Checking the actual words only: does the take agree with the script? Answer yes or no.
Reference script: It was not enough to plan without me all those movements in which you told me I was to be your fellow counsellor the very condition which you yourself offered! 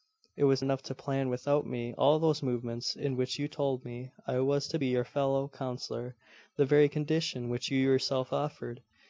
no